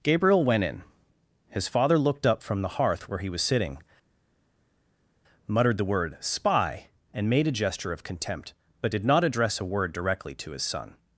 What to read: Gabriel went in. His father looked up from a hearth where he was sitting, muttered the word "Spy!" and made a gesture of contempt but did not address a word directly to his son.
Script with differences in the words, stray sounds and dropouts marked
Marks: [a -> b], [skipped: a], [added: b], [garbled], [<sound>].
Gabriel went in. His father looked up from [a -> the] hearth where he was sitting, muttered the word "Spy!" and made a gesture of contempt but did not address a word directly to his son.